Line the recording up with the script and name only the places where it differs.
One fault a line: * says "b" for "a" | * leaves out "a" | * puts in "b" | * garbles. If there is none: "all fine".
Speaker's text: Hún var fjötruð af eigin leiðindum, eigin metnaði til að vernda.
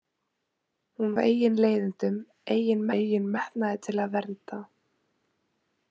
* leaves out "var fjötruð"
* puts in "eigin"